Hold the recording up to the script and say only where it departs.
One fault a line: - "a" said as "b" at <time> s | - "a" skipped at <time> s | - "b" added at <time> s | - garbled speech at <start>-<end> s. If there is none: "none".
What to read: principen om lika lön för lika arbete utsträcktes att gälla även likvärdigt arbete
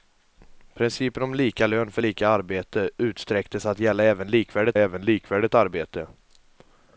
- "även likvärdigt" added at 4.8 s